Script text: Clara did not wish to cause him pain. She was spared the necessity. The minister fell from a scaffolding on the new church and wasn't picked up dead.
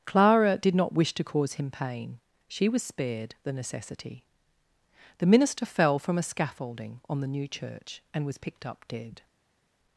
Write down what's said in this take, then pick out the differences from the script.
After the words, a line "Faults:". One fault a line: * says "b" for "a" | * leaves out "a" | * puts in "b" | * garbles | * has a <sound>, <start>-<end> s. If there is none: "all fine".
Clara did not wish to cause him pain. She was spared the necessity. The minister fell from a scaffolding on the new church and was picked up dead.
Faults:
* says "was" for "wasn't"